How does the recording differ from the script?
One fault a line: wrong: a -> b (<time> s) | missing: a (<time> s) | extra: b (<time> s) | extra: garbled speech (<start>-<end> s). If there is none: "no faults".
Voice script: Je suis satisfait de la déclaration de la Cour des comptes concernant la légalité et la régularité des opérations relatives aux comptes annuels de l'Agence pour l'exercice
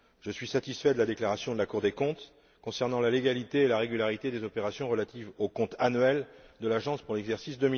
no faults